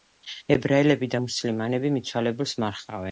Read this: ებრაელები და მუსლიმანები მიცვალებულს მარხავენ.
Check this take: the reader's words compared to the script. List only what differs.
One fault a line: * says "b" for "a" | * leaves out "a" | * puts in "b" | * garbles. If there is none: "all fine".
all fine